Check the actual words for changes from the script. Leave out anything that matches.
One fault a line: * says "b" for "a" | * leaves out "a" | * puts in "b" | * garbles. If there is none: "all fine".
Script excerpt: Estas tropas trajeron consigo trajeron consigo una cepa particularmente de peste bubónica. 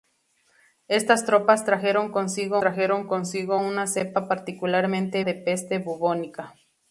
all fine